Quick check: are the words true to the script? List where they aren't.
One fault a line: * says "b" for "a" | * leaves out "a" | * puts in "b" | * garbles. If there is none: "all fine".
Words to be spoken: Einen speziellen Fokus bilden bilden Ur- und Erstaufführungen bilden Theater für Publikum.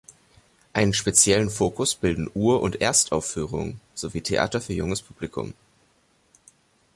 * leaves out "bilden"
* says "sowie" for "bilden"
* puts in "junges"